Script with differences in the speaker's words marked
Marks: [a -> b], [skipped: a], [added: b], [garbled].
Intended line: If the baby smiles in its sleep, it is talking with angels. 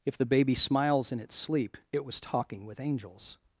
If the baby smiles in its sleep, it [is -> was] talking with angels.